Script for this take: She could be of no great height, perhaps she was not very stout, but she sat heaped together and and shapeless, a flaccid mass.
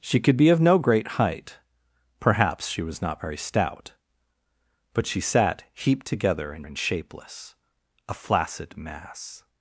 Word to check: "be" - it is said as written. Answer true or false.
true